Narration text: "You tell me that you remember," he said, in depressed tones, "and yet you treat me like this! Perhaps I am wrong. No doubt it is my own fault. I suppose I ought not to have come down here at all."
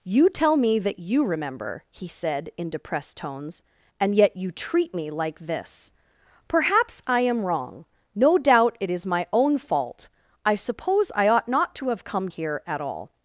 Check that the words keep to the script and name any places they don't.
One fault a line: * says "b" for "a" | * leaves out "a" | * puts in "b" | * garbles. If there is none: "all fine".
* leaves out "down"